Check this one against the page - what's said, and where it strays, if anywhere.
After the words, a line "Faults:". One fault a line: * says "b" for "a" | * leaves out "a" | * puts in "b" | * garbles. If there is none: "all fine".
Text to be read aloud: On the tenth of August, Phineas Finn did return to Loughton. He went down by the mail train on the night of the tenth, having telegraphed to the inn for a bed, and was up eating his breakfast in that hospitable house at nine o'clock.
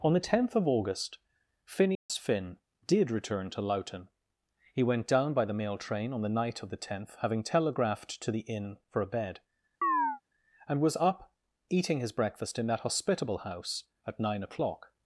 On the tenth of August, Phineas Finn did return to Loughton. He went down by the mail train on the night of the tenth, having telegraphed to the inn for a bed, and was up eating his breakfast in that hospitable house at nine o'clock.
Faults:
all fine